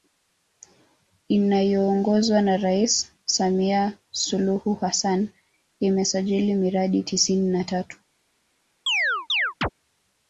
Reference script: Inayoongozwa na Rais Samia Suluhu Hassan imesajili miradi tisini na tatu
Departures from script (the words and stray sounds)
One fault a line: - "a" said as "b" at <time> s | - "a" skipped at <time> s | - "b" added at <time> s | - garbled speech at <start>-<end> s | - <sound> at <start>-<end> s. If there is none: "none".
- chirp at 8.9-9.7 s